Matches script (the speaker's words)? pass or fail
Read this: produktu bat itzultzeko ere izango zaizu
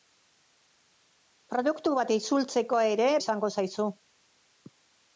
pass